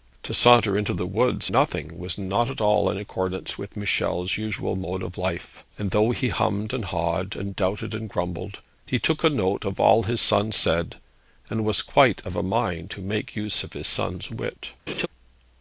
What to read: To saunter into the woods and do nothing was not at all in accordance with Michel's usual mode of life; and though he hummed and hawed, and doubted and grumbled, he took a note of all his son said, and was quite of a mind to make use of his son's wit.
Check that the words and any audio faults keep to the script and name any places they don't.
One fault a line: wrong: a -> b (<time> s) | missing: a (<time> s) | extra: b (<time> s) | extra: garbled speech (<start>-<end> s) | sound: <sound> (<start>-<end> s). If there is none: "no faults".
missing: and do (1.5 s)
sound: laugh (14.9-15.1 s)